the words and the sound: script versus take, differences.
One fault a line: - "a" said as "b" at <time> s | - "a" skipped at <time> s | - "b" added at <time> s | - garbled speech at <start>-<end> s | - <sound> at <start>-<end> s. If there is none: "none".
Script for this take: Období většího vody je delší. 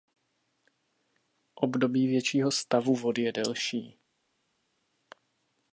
- "stavu" added at 2.5 s